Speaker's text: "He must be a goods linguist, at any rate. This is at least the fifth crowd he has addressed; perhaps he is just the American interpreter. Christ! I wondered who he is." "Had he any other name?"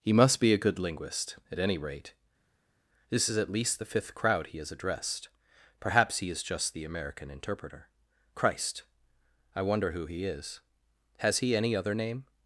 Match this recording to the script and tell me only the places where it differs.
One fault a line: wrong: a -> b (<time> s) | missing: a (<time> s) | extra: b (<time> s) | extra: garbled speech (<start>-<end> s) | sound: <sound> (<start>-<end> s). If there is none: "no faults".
wrong: goods -> good (0.6 s)
wrong: wondered -> wonder (9.6 s)
wrong: Had -> Has (11.2 s)